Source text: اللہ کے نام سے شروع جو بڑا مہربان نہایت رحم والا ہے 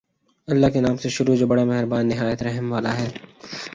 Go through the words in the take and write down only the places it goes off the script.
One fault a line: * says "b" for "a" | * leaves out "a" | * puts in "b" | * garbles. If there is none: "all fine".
all fine